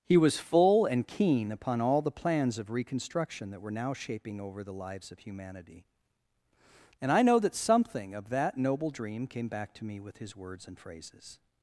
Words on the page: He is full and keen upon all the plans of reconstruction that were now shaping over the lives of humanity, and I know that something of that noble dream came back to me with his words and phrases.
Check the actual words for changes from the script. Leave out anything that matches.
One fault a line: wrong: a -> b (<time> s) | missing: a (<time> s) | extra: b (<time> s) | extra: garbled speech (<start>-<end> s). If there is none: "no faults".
wrong: is -> was (0.2 s)